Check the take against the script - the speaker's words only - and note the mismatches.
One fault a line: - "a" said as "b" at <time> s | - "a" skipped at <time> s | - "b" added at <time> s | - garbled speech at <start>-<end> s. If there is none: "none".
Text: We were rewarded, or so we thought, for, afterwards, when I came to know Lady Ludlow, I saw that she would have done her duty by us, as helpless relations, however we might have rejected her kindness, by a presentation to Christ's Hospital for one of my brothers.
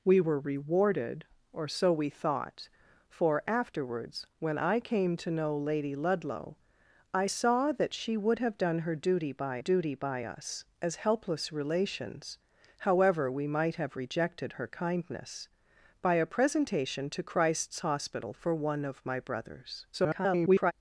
- "duty by" added at 9.6 s
- garbled speech at 19.9-20.7 s